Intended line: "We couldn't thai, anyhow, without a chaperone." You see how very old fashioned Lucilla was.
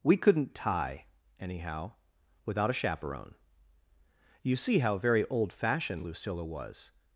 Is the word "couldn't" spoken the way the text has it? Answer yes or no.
yes